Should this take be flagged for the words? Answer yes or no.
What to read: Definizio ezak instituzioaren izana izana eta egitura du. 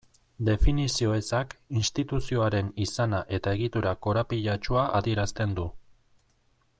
yes